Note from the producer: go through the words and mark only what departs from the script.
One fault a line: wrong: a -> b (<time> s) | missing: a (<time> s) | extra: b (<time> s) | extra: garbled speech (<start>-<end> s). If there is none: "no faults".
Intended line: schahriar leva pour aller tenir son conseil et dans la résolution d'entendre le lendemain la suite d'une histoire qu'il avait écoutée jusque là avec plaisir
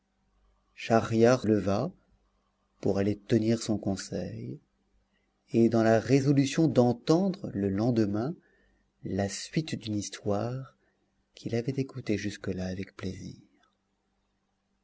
no faults